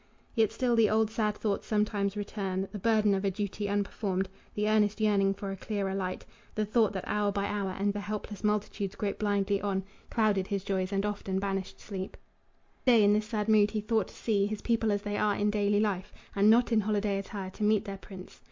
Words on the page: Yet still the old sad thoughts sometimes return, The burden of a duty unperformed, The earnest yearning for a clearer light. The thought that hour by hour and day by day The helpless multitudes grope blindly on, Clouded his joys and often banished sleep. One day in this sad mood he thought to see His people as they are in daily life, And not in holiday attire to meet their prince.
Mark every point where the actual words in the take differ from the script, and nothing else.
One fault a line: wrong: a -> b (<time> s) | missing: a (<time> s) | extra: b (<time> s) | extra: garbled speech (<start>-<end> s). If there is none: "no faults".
missing: day by day (7.9 s)
missing: One (12.2 s)